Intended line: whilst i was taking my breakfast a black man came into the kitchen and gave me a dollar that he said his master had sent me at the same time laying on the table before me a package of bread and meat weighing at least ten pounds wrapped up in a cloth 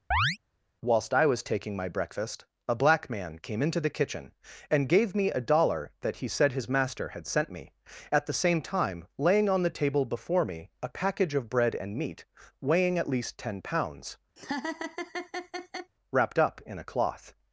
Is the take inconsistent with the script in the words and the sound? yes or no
yes